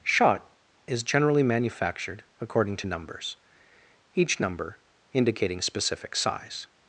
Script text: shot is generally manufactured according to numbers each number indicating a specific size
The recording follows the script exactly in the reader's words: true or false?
false